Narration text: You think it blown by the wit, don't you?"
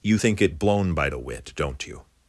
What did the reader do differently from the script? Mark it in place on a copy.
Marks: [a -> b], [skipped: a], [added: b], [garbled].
You think it blown by the wit, don't you?"